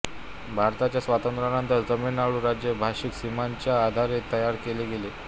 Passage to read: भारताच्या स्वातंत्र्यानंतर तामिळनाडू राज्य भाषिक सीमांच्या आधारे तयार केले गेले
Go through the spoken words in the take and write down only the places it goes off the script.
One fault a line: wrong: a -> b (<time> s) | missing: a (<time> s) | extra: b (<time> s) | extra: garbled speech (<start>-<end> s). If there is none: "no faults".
no faults